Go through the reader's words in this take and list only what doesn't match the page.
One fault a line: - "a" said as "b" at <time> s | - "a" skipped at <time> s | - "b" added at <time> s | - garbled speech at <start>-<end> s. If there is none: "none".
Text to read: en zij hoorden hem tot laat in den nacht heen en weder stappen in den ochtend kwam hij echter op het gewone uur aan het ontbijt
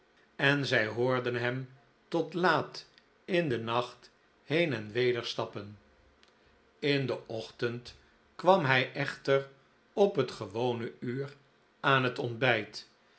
none